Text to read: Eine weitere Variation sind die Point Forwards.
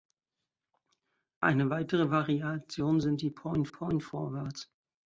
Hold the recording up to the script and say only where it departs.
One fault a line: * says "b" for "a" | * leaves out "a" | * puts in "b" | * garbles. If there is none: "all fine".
* puts in "Point"